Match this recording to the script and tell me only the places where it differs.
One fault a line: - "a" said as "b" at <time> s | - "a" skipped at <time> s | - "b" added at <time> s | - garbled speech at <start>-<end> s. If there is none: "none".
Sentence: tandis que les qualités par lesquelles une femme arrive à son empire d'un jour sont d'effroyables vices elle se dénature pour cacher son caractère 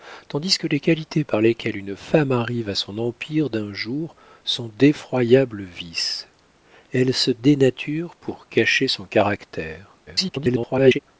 - garbled speech at 10.1-11.0 s